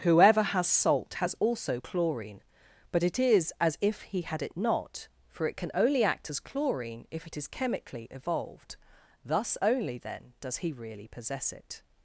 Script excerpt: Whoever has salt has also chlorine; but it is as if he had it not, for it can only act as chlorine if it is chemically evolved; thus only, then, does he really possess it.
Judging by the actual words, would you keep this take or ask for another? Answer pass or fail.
pass